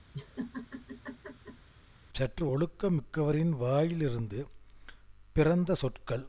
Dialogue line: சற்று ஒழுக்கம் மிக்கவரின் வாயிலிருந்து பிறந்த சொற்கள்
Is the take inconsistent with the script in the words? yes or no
no